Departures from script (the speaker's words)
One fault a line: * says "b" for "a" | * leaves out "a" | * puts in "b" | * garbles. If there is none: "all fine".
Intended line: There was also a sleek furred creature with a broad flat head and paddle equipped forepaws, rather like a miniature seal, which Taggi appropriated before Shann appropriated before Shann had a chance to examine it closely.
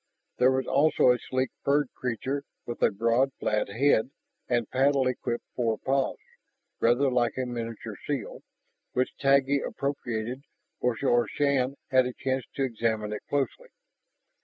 * leaves out "appropriated before Shann"